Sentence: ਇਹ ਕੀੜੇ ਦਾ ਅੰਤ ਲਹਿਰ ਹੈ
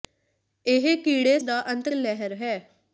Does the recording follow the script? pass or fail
pass